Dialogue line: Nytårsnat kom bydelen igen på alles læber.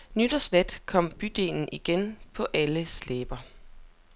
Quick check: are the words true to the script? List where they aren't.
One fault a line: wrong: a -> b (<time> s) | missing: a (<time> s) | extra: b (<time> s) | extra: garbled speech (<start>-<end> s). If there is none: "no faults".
no faults